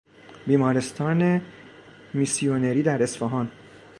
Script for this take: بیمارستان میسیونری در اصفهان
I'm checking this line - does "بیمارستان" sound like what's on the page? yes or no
yes